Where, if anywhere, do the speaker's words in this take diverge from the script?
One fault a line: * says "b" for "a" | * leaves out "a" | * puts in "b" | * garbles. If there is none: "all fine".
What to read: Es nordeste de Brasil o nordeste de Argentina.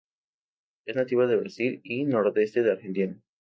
* says "nativa" for "nordeste"
* says "y" for "o"